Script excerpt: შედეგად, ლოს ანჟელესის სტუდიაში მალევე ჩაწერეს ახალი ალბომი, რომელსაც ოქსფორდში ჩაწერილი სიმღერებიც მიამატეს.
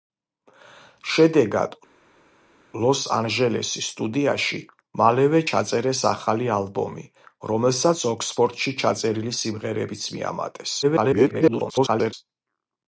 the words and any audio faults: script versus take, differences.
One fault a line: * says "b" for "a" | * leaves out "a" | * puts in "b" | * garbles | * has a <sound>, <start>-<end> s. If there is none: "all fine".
* garbles